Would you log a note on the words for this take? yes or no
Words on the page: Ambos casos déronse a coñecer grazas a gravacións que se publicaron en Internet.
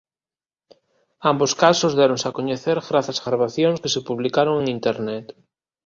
no